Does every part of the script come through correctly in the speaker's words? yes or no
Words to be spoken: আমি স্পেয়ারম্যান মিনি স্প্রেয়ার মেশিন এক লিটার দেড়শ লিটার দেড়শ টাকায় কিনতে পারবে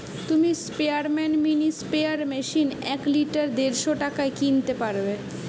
no